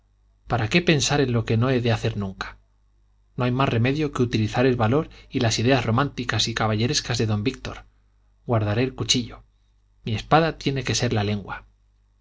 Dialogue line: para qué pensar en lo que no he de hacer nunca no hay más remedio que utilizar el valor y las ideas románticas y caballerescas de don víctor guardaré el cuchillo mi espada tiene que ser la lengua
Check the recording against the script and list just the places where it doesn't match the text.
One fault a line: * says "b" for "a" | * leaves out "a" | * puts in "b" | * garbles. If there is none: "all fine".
all fine